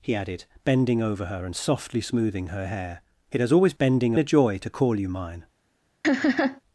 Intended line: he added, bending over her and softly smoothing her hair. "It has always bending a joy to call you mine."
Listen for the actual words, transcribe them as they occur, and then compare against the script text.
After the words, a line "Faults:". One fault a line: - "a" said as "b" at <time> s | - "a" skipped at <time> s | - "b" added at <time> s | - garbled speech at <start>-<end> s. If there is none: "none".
he added, bending over her and softly smoothing her hair. "It has always bending a joy to call you mine."
Faults:
none